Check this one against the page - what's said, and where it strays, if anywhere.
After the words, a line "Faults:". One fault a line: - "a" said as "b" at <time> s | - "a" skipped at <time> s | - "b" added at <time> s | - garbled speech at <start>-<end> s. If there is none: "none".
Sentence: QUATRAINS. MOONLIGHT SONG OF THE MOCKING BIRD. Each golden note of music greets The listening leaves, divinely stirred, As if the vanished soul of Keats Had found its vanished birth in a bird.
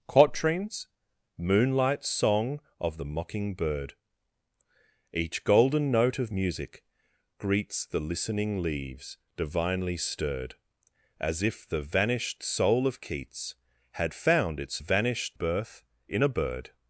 QUATRAINS. MOONLIGHT SONG OF THE MOCKING BIRD. Each golden note of music greets The listening leaves, divinely stirred, As if the vanished soul of Keats Had found its vanished birth in a bird.
Faults:
none